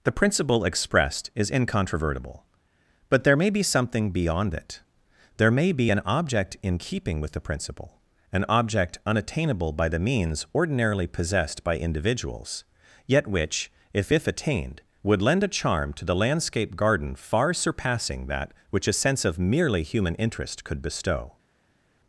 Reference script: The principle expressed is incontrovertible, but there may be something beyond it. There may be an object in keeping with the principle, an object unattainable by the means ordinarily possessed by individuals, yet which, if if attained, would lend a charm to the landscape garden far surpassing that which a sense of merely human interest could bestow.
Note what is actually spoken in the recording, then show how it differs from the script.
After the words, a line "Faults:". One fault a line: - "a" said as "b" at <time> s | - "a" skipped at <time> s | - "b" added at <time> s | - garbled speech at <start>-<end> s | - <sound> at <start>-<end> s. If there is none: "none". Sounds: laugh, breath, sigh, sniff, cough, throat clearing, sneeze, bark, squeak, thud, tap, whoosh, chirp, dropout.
The principle expressed is incontrovertible, but there may be something beyond it. There may be an object in keeping with the principle, an object unattainable by the means ordinarily possessed by individuals, yet which, if if attained, would lend a charm to the landscape garden far surpassing that which a sense of merely human interest could bestow.
Faults:
none